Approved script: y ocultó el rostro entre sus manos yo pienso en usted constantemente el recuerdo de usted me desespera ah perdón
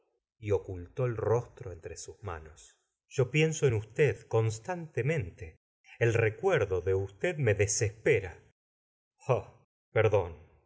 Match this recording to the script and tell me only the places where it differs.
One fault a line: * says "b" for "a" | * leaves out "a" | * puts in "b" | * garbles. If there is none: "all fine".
all fine